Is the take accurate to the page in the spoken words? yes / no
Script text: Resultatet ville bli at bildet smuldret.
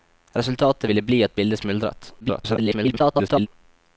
no